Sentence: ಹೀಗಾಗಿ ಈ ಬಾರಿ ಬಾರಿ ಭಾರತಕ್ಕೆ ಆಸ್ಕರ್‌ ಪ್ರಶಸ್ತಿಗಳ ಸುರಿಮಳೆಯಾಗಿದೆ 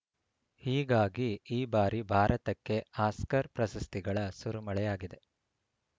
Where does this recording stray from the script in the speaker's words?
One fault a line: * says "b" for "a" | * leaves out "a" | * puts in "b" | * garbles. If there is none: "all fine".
* leaves out "ಬಾರಿ"